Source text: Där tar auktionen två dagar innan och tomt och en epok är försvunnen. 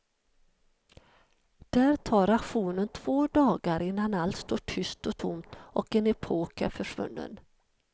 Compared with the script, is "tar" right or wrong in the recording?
right